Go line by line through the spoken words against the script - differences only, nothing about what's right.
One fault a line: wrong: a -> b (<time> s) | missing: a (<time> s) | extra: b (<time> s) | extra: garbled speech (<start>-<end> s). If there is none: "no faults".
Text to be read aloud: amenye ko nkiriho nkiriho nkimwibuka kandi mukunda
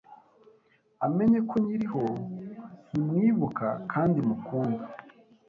missing: nkiriho (2.0 s)